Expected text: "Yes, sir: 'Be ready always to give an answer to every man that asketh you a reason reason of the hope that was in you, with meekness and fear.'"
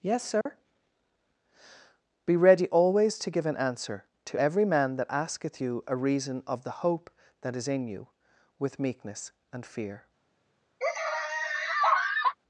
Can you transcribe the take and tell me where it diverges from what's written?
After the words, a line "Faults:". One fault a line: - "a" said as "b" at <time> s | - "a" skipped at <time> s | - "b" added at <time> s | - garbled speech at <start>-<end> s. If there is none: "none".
"Yes, sir: 'Be ready always to give an answer to every man that asketh you a reason of the hope that is in you, with meekness and fear.'"
Faults:
- "reason" skipped at 6.4 s
- "was" said as "is" at 7.5 s